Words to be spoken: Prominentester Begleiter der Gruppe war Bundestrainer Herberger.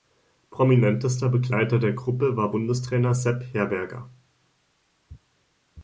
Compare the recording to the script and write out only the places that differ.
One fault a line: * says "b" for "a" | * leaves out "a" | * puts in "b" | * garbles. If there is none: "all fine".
* puts in "Sepp"